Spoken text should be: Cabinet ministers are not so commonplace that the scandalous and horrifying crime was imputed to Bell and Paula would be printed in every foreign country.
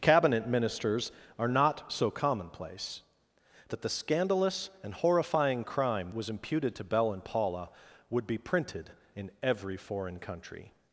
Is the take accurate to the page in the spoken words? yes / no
yes